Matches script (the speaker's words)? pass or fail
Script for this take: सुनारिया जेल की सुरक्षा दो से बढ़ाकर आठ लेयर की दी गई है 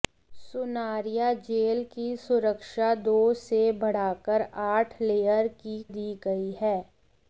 pass